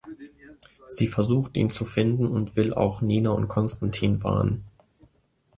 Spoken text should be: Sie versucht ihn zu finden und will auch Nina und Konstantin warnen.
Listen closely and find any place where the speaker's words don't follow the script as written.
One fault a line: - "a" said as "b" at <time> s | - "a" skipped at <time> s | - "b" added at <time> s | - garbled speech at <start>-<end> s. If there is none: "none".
none